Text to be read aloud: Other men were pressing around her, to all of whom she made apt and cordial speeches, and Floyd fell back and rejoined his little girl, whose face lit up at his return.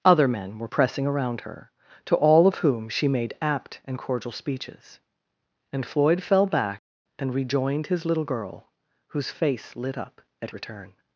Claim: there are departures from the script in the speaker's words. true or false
true